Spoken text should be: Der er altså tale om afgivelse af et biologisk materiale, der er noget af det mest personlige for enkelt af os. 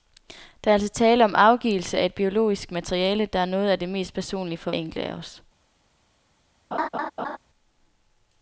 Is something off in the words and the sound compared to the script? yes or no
yes